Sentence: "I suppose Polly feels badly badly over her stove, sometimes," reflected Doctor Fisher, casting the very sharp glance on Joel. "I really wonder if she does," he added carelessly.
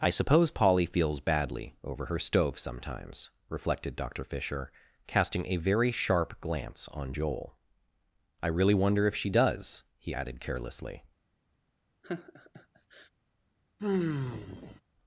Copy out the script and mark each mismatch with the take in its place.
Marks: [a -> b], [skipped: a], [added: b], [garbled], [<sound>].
"I suppose Polly feels badly [skipped: badly] over her stove, sometimes," reflected Doctor Fisher, casting [the -> a] very sharp glance on Joel. "I really wonder if she does," he added carelessly. [laugh] [sigh]